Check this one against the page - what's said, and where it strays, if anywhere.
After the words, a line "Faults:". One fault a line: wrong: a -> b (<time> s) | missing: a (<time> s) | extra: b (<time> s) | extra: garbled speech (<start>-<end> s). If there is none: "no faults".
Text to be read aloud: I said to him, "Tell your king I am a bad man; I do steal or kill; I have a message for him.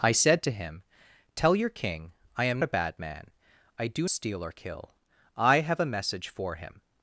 I said to him, "Tell your king I am a bad man; I do steal or kill; I have a message for him.
Faults:
no faults